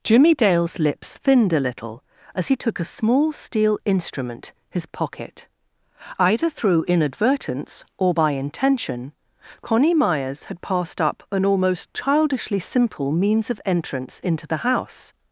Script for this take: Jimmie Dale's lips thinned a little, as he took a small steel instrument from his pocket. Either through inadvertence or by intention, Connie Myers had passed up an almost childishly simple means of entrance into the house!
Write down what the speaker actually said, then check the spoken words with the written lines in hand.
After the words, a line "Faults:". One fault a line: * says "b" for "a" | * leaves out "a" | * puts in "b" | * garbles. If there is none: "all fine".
Jimmie Dale's lips thinned a little, as he took a small steel instrument his pocket. Either through inadvertence or by intention, Connie Myers had passed up an almost childishly simple means of entrance into the house!
Faults:
* leaves out "from"